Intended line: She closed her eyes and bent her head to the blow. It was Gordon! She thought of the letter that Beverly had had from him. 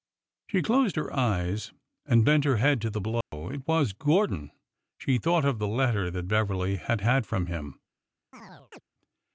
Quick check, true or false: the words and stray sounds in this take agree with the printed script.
false